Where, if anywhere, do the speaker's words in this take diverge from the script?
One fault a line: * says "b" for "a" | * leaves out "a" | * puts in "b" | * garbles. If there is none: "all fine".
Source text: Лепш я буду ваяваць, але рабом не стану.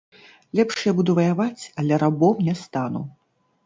all fine